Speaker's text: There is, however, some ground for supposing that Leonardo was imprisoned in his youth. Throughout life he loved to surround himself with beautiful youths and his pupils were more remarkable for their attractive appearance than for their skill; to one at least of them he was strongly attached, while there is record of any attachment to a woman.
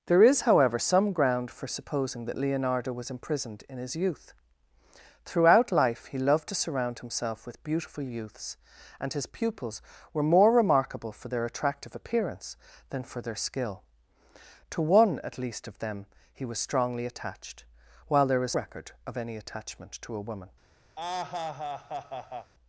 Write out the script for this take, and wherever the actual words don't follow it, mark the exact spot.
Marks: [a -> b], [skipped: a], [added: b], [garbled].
There is, however, some ground for supposing that Leonardo was imprisoned in his youth. Throughout life he loved to surround himself with beautiful youths and his pupils were more remarkable for their attractive appearance than for their skill; to one at least of them he was strongly attached, while there is record of any attachment to a woman.